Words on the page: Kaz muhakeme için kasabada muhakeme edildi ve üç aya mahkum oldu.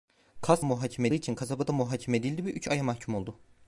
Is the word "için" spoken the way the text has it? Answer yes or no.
yes